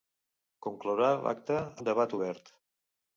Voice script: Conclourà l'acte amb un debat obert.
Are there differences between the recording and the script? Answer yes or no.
yes